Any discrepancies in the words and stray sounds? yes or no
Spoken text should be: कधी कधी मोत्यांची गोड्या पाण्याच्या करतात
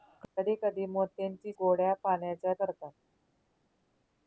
no